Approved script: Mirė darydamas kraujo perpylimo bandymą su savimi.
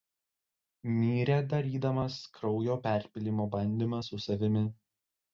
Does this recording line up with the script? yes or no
yes